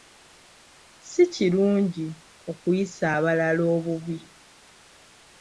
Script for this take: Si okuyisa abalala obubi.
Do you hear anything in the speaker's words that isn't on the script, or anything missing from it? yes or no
yes